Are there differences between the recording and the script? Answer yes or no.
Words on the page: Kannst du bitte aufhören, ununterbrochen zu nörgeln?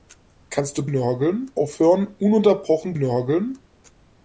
yes